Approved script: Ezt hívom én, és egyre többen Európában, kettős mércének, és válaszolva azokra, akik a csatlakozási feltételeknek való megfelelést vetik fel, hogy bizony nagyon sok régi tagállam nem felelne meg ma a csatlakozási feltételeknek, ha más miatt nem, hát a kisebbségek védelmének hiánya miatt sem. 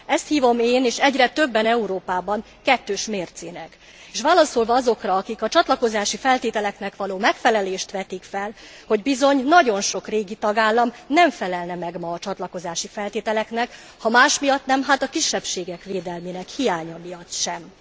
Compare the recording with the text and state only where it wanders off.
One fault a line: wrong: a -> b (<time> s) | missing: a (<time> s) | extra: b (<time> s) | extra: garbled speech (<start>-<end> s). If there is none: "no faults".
no faults